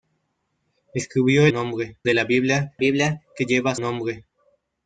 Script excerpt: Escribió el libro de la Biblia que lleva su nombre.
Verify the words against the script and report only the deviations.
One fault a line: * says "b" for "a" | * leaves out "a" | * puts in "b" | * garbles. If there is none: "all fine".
* says "nombre" for "libro"
* puts in "Biblia"
* leaves out "su"